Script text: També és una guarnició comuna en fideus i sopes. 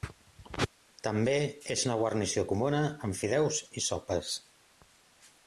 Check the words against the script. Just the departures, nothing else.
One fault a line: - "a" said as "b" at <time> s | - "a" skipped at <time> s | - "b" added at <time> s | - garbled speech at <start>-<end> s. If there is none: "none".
none